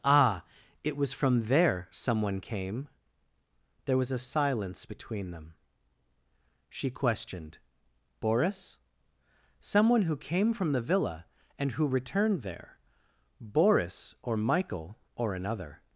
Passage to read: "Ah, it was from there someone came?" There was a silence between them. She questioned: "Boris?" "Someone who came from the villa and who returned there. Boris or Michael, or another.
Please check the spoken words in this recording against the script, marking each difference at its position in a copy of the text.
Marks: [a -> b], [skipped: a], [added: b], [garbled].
"Ah, it was from there someone came?" There was a silence between them. She questioned: "Boris?" "Someone who came from the villa and who returned there. Boris or Michael, or another.